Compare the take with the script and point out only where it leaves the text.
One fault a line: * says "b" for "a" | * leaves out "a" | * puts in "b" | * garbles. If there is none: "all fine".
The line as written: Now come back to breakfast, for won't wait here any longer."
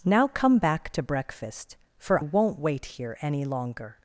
all fine